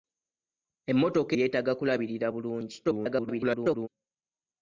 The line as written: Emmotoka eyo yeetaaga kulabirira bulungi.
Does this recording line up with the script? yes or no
no